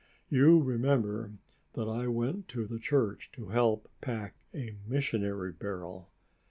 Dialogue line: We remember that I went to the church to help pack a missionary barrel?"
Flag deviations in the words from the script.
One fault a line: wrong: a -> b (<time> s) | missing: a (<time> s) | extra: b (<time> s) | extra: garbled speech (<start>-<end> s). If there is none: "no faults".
wrong: We -> You (0.3 s)